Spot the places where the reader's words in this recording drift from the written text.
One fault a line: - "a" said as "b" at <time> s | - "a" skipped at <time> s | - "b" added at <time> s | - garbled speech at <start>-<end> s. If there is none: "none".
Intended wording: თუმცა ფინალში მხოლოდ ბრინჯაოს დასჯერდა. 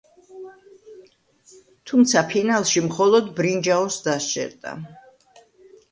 none